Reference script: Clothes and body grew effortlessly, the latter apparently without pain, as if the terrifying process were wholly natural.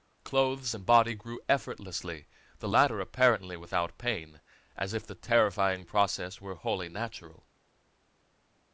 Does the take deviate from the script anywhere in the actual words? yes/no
no